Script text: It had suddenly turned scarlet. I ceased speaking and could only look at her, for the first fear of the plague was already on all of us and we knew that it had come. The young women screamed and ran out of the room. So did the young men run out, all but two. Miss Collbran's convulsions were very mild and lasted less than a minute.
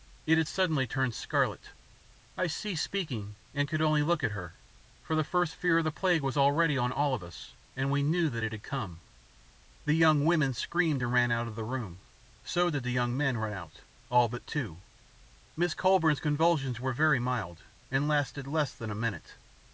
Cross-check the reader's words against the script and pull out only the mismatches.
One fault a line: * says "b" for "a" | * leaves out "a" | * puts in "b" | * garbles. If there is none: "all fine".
all fine